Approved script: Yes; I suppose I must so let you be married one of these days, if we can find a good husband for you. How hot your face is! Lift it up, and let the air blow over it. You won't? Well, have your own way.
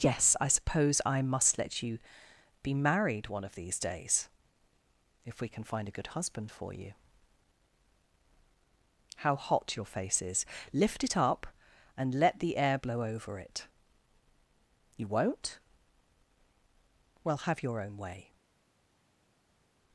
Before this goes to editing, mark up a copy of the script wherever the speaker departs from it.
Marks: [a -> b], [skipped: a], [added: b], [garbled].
Yes; I suppose I must [skipped: so] let you be married one of these days, if we can find a good husband for you. How hot your face is! Lift it up, and let the air blow over it. You won't? Well, have your own way.